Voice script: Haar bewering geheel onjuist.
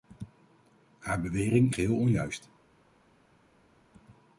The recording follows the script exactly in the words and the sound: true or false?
true